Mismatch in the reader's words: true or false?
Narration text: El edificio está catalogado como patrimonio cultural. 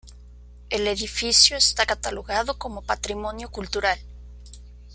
false